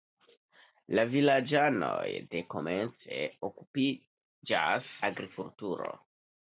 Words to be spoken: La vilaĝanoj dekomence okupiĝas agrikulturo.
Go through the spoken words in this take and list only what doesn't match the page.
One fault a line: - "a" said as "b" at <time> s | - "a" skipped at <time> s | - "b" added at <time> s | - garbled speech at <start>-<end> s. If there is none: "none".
none